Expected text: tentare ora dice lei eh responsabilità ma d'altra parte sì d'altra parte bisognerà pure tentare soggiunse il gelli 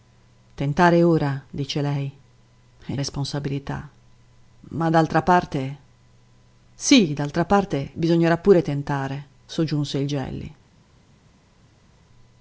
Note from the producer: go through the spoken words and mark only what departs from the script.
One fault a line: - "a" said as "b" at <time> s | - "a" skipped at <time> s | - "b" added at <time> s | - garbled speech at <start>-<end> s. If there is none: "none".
none